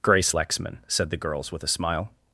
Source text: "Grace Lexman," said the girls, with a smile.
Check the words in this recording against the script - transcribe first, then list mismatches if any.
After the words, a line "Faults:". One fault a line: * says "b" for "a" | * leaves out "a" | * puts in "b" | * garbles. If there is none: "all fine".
"Grace Lexman," said the girls, with a smile.
Faults:
all fine